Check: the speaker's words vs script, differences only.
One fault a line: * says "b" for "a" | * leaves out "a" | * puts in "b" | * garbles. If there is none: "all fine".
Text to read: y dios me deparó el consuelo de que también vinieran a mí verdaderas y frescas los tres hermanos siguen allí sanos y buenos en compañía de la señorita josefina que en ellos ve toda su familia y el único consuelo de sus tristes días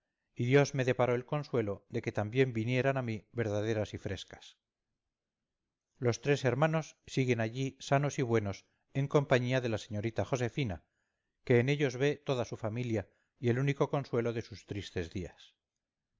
all fine